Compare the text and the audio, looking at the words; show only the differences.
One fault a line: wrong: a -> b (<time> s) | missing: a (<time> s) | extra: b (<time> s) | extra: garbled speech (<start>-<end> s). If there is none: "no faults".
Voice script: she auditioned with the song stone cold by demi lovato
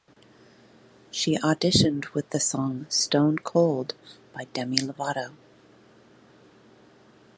no faults